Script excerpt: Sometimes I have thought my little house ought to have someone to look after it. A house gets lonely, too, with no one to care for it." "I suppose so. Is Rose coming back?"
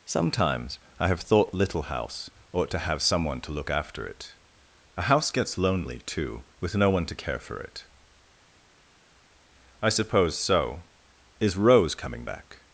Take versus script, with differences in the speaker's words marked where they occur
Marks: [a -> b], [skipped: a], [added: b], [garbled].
Sometimes I have thought [skipped: my] little house ought to have someone to look after it. A house gets lonely, too, with no one to care for it." "I suppose so. Is Rose coming back?"